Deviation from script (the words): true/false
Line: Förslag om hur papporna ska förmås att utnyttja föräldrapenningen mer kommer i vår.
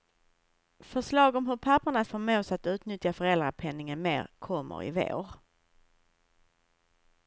true